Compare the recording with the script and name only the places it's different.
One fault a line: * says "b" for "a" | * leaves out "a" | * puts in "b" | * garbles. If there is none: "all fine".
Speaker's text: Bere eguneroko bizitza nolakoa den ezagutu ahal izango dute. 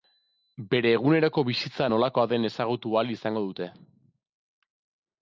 all fine